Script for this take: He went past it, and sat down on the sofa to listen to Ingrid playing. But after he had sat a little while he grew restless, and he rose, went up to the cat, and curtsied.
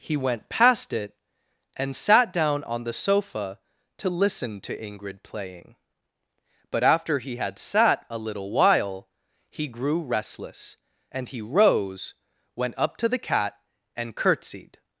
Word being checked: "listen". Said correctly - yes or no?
yes